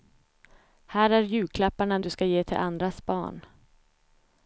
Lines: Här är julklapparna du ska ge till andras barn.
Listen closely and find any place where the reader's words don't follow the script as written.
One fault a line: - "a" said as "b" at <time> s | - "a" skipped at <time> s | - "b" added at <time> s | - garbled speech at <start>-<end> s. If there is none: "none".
none